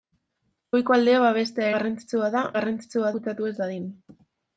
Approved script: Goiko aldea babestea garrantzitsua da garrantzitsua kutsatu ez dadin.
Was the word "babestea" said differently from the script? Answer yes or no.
no